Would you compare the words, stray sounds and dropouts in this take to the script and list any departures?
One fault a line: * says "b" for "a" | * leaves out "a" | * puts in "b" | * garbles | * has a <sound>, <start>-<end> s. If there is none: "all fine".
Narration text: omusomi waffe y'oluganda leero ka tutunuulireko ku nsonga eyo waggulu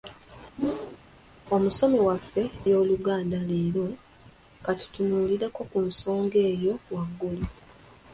* has a whoosh, 0.6-1.0 s